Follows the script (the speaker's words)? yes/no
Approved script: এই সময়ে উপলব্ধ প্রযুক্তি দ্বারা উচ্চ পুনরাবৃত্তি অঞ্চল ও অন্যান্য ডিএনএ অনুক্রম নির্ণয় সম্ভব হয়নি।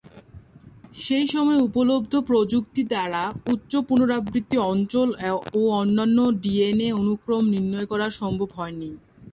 no